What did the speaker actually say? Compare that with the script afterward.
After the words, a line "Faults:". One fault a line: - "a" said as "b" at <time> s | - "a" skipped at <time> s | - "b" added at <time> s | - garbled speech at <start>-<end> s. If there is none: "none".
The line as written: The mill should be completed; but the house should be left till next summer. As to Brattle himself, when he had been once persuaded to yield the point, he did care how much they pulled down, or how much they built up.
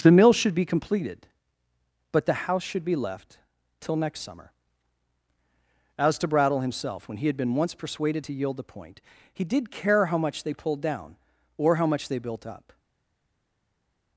The mill should be completed; but the house should be left till next summer. As to Brattle himself, when he had been once persuaded to yield the point, he did care how much they pulled down, or how much they built up.
Faults:
none